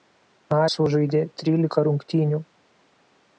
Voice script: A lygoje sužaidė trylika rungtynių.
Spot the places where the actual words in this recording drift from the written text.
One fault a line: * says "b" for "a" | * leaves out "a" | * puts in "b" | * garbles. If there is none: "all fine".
* leaves out "lygoje"